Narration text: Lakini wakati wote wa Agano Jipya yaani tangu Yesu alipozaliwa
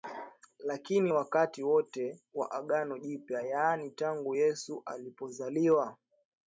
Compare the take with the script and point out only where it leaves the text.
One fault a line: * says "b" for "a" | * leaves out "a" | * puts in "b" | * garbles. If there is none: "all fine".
all fine